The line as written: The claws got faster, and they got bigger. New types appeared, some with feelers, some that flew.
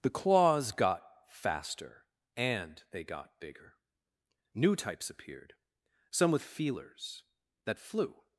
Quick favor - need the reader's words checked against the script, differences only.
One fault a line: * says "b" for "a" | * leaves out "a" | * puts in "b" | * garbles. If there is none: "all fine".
* leaves out "some"